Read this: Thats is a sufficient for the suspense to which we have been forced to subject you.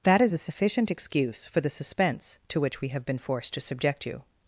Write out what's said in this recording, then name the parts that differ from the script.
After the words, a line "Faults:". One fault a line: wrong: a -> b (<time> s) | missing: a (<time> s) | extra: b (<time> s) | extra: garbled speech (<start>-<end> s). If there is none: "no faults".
That is a sufficient excuse for the suspense to which we have been forced to subject you.
Faults:
wrong: Thats -> That (0.0 s)
extra: excuse (0.9 s)